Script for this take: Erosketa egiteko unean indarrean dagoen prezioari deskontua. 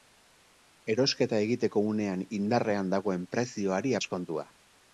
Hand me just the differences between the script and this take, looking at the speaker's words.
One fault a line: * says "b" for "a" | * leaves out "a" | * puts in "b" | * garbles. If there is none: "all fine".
all fine